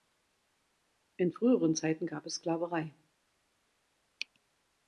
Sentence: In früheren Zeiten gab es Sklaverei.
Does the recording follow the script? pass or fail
pass